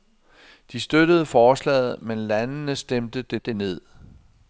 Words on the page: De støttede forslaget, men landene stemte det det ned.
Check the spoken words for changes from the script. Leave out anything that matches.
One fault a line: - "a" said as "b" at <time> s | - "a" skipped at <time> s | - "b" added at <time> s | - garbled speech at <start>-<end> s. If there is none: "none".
none